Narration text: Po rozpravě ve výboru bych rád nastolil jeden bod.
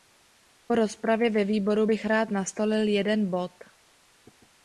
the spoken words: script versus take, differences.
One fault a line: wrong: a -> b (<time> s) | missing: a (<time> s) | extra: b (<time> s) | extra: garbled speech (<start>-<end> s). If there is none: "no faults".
no faults